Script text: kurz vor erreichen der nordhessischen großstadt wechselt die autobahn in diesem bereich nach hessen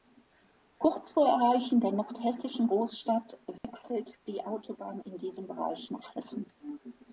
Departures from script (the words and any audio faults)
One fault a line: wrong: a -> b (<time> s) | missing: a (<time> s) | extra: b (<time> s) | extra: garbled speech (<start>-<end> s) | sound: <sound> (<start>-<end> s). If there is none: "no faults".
sound: dropout (3.6-3.6 s)